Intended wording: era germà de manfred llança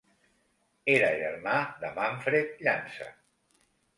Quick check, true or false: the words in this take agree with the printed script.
true